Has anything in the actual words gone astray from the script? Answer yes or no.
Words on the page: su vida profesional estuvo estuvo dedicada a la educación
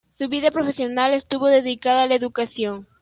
yes